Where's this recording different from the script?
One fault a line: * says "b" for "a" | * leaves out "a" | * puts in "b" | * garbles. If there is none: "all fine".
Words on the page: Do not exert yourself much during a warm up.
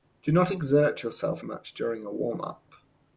all fine